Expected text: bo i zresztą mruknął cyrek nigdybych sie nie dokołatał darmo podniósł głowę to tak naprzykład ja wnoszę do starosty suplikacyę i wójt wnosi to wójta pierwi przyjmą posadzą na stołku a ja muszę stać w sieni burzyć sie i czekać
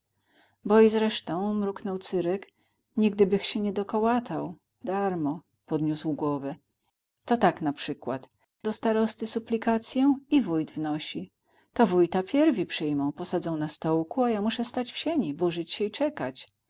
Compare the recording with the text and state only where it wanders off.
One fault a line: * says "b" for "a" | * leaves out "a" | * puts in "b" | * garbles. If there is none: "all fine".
* leaves out "ja wnoszę"